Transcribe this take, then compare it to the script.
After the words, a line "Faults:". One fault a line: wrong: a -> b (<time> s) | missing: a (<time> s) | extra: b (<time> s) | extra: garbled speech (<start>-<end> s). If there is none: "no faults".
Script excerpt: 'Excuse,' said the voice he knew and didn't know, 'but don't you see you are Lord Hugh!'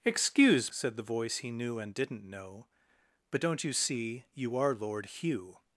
'Excuse,' said the voice he knew and didn't know, 'but don't you see you are Lord Hugh!'
Faults:
no faults